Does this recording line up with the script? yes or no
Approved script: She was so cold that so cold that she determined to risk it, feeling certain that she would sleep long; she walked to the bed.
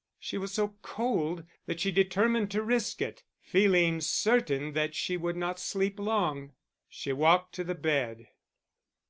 no